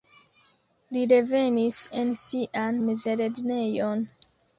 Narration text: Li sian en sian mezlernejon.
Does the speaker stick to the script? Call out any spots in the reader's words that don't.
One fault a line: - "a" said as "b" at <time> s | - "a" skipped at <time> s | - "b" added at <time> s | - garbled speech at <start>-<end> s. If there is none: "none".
- "sian" said as "revenis" at 1.1 s